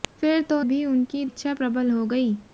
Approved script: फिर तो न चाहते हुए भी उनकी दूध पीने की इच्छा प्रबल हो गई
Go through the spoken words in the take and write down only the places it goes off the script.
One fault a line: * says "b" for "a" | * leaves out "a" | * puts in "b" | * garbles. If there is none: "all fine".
* leaves out "न चाहते हुए"
* leaves out "दूध पीने की"